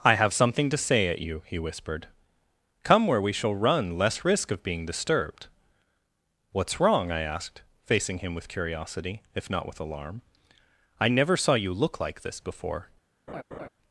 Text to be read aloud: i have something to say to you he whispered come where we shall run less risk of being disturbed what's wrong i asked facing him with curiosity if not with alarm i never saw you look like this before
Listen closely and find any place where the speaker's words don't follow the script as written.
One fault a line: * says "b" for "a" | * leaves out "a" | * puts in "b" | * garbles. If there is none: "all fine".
* says "at" for "to"